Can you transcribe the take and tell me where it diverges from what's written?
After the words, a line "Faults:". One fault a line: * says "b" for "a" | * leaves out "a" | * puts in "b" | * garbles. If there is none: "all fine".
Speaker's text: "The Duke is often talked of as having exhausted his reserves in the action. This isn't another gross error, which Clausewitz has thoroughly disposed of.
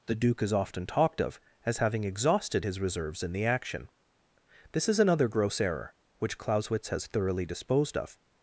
"The Duke is often talked of as having exhausted his reserves in the action. This is another gross error, which Clausewitz has thoroughly disposed of.
Faults:
* says "is" for "isn't"